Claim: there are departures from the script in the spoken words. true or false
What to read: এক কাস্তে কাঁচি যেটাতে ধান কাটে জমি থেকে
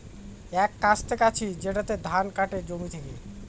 false